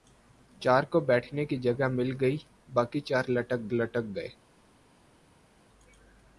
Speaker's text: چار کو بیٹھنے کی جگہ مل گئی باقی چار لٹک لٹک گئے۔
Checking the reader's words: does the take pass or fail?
pass